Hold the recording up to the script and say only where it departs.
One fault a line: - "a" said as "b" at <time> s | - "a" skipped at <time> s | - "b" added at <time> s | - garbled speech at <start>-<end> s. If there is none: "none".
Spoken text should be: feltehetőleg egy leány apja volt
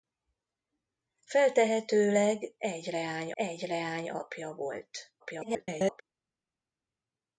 - "egy leány" added at 3.3 s
- garbled speech at 5.2-6.0 s